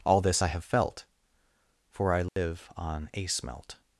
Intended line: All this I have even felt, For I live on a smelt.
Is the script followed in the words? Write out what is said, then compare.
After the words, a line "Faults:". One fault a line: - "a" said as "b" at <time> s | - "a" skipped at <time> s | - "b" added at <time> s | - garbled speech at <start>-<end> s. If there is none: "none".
All this I have felt, For I live on a smelt.
Faults:
- "even" skipped at 0.6 s